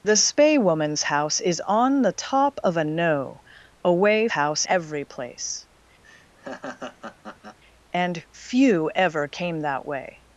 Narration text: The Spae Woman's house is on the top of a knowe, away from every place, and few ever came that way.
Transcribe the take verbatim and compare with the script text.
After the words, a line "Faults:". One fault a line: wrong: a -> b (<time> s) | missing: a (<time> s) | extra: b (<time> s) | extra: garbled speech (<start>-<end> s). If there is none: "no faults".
The Spae Woman's house is on the top of a knowe, away house every place, and few ever came that way.
Faults:
wrong: from -> house (4.3 s)